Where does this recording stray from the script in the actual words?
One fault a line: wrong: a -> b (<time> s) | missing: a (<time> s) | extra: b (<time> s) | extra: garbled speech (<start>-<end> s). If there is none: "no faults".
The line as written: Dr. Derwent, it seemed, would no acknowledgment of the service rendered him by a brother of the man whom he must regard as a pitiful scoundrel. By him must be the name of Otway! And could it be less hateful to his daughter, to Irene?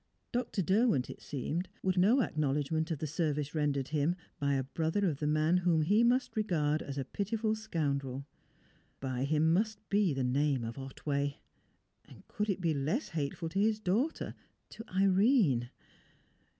no faults